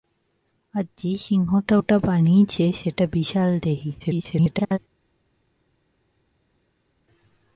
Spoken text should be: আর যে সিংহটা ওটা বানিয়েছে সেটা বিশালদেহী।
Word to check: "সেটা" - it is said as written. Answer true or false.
true